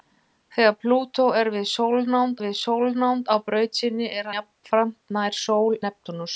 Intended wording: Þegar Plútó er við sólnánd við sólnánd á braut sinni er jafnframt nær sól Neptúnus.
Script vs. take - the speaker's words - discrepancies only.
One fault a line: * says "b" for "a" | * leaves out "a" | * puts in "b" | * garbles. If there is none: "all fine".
all fine